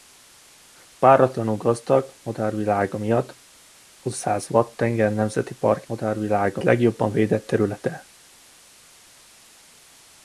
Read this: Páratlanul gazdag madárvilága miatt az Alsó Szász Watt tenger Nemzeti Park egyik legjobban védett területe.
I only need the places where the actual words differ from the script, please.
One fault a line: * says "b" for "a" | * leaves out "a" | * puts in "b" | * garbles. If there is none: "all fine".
* leaves out "Alsó"
* says "madárvilága" for "egyik"